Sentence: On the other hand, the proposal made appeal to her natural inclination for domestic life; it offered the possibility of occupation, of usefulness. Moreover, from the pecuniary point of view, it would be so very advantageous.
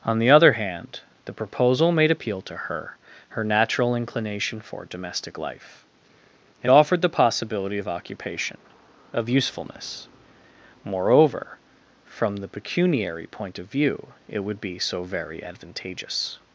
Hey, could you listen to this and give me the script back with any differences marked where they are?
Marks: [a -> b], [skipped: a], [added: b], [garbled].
On the other hand, the proposal made appeal to her [added: her] natural inclination for domestic life; it offered the possibility of occupation, of usefulness. Moreover, from the pecuniary point of view, it would be so very advantageous.